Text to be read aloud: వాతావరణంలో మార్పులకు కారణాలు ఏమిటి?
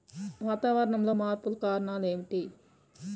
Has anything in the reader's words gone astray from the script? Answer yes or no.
no